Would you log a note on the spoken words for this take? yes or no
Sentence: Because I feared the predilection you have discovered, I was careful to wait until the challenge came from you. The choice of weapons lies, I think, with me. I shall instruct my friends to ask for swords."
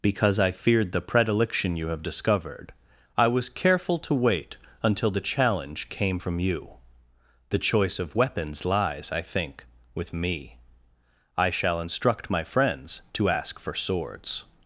no